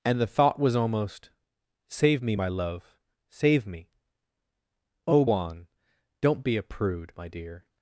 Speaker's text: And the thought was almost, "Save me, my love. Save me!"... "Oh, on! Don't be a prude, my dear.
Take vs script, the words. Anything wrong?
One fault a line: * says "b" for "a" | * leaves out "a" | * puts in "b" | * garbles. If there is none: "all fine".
all fine